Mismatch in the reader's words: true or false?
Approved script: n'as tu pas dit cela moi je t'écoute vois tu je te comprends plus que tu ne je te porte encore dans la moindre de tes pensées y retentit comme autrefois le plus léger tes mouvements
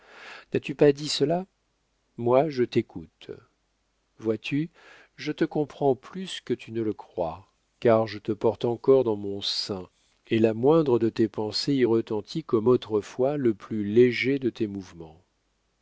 true